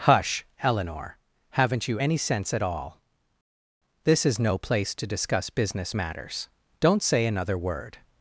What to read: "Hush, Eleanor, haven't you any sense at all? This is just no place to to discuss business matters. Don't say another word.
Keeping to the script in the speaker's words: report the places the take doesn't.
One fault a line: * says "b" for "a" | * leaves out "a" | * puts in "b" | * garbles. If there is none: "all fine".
* leaves out "just"
* leaves out "to"